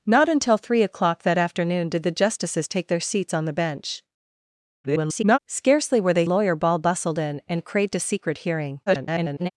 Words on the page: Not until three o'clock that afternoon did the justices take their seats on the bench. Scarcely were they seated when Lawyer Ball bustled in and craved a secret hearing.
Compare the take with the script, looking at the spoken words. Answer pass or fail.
fail